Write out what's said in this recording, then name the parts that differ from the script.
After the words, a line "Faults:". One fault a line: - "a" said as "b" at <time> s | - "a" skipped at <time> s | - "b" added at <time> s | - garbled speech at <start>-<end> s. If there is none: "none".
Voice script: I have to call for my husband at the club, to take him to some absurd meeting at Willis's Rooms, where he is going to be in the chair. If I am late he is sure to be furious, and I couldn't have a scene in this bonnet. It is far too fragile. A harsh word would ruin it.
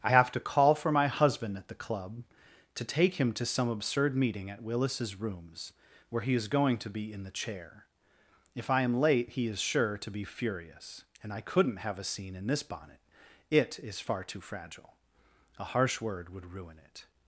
I have to call for my husband at the club, to take him to some absurd meeting at Willis's Rooms, where he is going to be in the chair. If I am late he is sure to be furious, and I couldn't have a scene in this bonnet. It is far too fragile. A harsh word would ruin it.
Faults:
none